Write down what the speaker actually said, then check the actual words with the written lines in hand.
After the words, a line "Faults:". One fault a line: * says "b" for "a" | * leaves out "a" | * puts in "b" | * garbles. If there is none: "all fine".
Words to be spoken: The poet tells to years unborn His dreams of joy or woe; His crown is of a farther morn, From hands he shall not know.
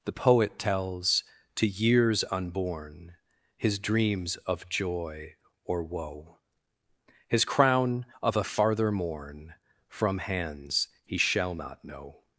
The poet tells to years unborn His dreams of joy or woe; His crown of a farther morn, From hands he shall not know.
Faults:
* leaves out "is"